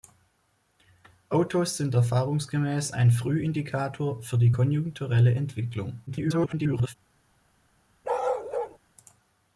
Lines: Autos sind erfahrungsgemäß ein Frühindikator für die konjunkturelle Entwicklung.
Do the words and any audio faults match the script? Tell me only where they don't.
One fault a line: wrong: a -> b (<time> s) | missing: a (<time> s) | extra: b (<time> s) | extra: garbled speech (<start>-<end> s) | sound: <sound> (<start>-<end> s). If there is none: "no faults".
extra: garbled speech (6.1-7.0 s)
sound: bark (8.0-8.8 s)